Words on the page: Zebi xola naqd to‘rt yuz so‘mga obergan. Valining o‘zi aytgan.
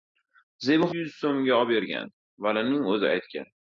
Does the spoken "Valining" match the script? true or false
true